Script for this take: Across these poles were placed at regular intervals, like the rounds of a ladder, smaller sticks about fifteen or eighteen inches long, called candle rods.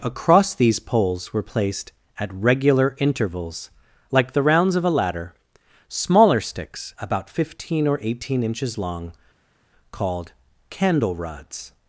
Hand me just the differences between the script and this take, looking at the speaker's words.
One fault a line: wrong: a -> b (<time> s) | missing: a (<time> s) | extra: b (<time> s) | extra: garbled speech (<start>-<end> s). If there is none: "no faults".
no faults